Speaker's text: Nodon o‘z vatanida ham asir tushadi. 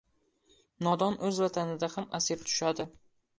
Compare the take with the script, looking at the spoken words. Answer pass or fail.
pass